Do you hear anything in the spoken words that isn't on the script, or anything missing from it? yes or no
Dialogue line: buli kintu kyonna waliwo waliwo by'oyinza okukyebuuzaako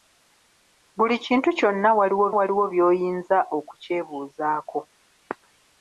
no